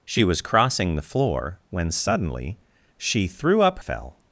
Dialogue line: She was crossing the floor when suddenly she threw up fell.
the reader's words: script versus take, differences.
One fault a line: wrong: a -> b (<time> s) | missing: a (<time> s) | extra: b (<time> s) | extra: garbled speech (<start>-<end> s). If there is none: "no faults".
no faults